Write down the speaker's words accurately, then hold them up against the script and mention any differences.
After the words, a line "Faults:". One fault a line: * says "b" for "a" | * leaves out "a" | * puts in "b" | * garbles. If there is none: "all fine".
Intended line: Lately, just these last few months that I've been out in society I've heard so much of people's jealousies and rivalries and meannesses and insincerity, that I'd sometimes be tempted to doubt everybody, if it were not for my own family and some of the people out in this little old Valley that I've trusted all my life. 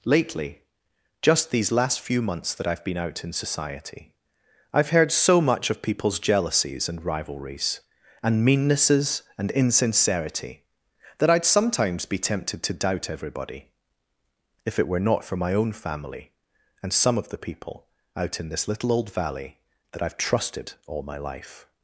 Lately, just these last few months that I've been out in society I've heard so much of people's jealousies and rivalries and meannesses and insincerity, that I'd sometimes be tempted to doubt everybody, if it were not for my own family and some of the people out in this little old Valley that I've trusted all my life.
Faults:
all fine